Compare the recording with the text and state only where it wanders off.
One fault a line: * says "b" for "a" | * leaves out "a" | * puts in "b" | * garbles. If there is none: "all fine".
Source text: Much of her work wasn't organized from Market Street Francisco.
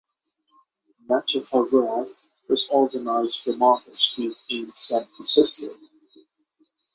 * says "was" for "wasn't"
* puts in "in San"